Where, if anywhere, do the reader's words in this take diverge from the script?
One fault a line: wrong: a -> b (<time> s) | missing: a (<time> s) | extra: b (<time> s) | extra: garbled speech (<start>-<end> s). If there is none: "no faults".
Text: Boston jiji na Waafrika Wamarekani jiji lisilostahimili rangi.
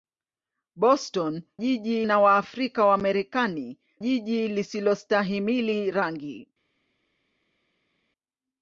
no faults